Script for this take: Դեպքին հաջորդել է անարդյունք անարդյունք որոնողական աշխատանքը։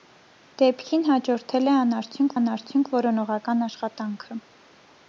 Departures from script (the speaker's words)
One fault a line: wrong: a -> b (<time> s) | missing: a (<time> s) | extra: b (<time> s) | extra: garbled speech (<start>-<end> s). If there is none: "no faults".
no faults